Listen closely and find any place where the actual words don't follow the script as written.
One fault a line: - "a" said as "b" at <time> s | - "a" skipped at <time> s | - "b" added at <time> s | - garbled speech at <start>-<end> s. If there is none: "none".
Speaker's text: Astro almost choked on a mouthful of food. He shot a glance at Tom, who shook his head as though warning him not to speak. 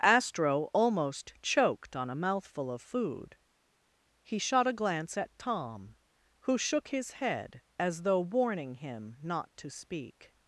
none